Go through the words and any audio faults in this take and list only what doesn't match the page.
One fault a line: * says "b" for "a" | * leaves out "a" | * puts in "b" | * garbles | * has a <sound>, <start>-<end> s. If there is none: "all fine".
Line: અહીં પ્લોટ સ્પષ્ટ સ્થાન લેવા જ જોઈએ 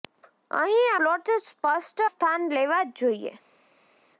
all fine